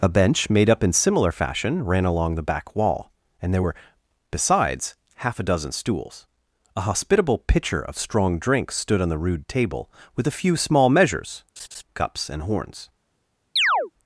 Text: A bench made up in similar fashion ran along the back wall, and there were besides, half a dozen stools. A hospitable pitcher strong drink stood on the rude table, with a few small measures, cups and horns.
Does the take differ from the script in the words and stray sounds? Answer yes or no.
yes